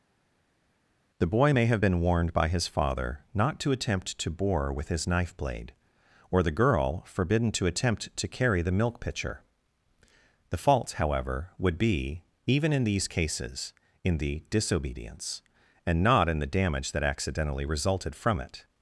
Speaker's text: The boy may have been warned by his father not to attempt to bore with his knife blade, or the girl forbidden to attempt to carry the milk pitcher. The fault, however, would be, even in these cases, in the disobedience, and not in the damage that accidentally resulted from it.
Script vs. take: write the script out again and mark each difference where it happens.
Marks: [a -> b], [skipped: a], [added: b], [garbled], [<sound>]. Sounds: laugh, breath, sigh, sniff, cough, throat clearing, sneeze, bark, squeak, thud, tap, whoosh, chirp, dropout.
The boy may have been warned by his father not to attempt to bore with his knife blade, or the girl forbidden to attempt to carry the milk pitcher. The fault, however, would be, even in these cases, in the disobedience, and not in the damage that accidentally resulted from it.